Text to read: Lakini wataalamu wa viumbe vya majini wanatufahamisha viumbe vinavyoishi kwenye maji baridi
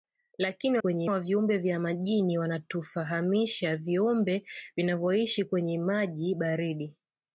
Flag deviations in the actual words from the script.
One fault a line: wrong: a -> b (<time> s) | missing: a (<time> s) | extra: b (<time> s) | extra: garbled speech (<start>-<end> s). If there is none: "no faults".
wrong: wataalamu -> kwenye (0.8 s)